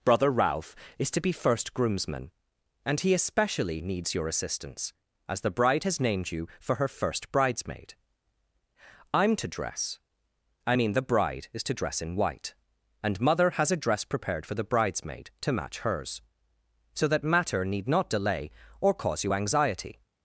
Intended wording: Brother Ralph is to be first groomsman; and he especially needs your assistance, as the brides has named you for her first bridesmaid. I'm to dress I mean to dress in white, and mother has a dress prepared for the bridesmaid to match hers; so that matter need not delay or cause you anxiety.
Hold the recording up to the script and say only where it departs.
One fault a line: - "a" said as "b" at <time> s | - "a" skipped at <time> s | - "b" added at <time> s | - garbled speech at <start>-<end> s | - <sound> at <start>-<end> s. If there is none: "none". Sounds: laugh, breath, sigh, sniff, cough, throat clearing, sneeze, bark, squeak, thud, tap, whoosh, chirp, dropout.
- "brides" said as "bride" at 5.5 s
- "the bride is" added at 10.9 s